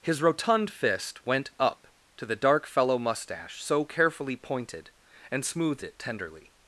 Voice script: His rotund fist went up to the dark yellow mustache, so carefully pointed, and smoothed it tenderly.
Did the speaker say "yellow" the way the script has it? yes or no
no